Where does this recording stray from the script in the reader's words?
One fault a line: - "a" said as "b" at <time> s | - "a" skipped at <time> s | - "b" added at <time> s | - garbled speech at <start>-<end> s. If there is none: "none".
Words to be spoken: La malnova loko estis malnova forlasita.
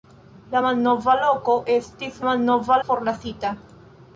none